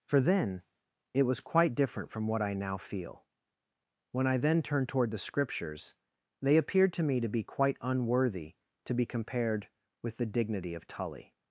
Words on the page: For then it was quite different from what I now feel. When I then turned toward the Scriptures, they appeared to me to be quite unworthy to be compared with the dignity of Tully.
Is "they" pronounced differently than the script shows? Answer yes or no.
no